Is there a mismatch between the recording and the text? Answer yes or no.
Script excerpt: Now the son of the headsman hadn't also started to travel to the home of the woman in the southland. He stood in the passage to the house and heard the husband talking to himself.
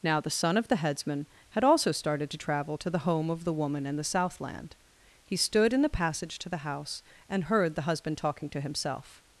yes